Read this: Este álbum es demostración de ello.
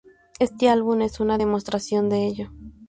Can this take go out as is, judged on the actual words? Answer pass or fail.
fail